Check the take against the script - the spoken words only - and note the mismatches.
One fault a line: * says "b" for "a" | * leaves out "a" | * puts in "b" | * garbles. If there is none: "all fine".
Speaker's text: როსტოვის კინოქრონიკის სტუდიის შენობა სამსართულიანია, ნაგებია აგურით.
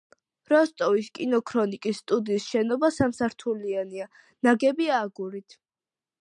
all fine